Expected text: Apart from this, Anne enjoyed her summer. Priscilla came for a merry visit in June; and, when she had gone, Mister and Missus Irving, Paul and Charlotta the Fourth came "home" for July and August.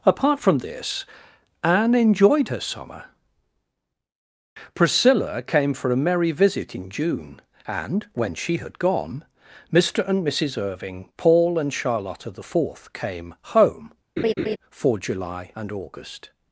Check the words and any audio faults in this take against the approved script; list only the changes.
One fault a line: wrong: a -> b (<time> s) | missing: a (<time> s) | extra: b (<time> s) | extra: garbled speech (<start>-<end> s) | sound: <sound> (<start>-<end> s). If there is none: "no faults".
sound: laugh (14.2-14.6 s)